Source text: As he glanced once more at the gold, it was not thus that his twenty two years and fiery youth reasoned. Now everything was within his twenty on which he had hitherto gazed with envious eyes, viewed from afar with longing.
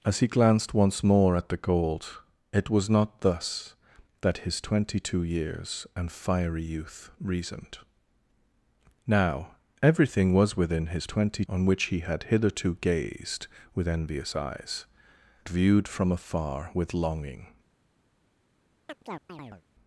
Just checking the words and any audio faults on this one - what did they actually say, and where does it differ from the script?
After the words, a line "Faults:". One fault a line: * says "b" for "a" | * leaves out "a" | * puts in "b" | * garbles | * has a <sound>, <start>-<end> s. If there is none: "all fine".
As he glanced once more at the gold, it was not thus that his twenty two years and fiery youth reasoned. Now everything was within his twenty on which he had hitherto gazed with envious eyes, viewed from afar with longing.
Faults:
* has a chirp, 18.9-19.6 s